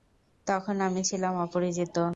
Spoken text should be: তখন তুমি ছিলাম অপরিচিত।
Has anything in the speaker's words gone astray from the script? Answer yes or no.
yes